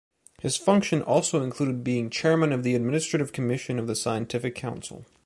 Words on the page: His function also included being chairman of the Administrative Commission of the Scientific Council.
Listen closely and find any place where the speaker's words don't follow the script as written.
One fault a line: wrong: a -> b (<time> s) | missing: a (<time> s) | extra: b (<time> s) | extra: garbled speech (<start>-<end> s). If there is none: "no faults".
no faults